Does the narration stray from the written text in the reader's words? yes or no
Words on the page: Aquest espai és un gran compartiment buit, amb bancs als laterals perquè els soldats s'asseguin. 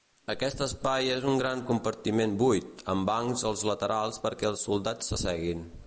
no